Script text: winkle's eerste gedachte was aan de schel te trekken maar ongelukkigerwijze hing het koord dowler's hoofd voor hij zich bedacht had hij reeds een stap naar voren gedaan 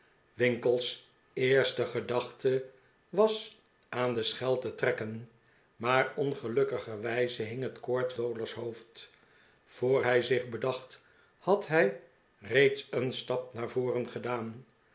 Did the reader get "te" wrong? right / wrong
right